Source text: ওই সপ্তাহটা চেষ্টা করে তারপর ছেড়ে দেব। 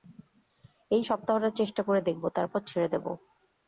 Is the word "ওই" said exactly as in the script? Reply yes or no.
no